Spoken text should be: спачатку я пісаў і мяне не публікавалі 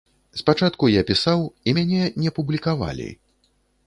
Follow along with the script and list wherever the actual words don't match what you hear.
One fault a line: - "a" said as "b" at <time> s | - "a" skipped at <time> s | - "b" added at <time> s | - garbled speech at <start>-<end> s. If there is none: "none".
none